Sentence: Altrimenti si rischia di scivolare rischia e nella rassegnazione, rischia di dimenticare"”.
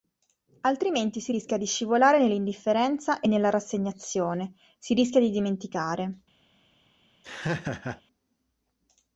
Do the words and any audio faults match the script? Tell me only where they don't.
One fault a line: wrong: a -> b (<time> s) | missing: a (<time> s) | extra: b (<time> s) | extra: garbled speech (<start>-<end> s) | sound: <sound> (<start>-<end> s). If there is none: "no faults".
wrong: rischia -> nell'indifferenza (2.2 s)
extra: si (4.8 s)
sound: laugh (7.2-8.0 s)